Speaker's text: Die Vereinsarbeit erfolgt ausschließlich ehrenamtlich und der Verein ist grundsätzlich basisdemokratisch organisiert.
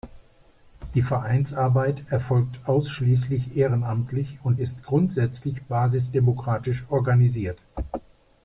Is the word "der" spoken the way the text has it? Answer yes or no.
no